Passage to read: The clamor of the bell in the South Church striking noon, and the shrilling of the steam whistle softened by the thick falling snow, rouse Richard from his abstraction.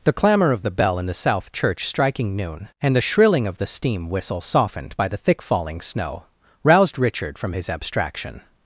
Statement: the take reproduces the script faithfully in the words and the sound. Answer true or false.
false